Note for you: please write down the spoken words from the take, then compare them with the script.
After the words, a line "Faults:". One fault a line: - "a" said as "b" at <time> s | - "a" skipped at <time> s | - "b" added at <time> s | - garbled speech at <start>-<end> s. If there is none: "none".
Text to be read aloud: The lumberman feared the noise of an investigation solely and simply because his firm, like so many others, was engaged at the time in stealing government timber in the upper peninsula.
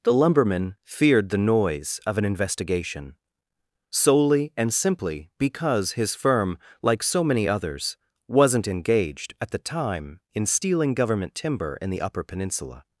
The lumberman feared the noise of an investigation solely and simply because his firm, like so many others, wasn't engaged at the time in stealing government timber in the upper peninsula.
Faults:
- "was" said as "wasn't" at 8.3 s